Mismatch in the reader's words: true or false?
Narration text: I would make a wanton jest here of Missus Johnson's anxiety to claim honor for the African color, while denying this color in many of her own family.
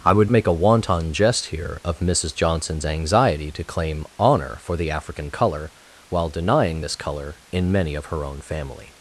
false